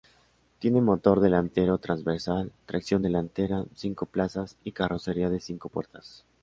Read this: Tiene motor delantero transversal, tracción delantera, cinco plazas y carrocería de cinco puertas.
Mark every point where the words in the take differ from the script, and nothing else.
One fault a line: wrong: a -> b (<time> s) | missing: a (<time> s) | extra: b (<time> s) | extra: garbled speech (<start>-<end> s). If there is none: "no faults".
no faults